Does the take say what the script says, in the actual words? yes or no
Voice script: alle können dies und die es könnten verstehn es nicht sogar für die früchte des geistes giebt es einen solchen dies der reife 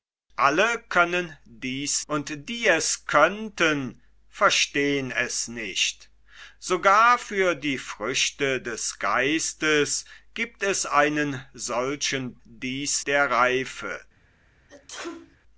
yes